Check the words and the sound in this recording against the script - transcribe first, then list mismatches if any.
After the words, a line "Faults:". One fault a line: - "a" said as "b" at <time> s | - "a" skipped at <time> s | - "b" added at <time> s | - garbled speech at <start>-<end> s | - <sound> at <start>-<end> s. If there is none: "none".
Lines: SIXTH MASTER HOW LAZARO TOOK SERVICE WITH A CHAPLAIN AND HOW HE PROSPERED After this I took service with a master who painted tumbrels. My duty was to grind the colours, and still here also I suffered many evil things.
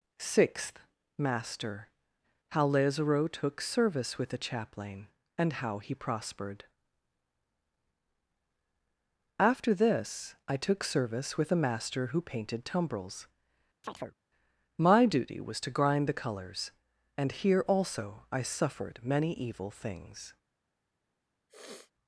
SIXTH MASTER HOW LAZARO TOOK SERVICE WITH A CHAPLAIN AND HOW HE PROSPERED After this I took service with a master who painted tumbrels. My duty was to grind the colours, and here also I suffered many evil things.
Faults:
- chirp at 13.8-14.2 s
- "still" skipped at 17.3 s
- sniff at 21.5-21.9 s